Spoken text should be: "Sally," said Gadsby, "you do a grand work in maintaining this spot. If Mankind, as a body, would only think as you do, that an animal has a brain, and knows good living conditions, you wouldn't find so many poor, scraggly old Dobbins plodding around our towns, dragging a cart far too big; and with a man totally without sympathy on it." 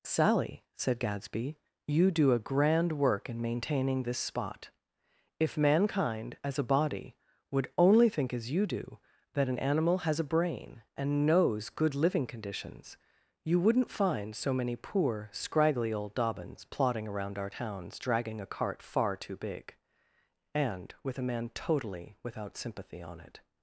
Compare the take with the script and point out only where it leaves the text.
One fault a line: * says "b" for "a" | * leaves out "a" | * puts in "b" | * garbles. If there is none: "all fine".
all fine